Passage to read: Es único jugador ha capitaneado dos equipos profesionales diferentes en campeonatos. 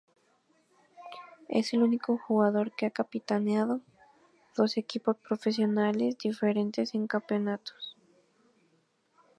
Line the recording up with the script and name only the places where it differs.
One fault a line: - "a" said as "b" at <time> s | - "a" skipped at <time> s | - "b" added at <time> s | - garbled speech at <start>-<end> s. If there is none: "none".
- "el" added at 1.7 s
- "que" added at 2.8 s